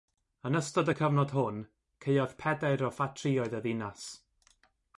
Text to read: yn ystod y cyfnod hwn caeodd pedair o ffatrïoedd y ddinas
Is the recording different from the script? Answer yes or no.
no